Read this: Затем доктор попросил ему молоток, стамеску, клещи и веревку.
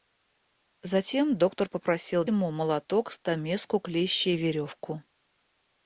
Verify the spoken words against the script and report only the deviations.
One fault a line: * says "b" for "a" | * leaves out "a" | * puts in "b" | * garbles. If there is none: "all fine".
all fine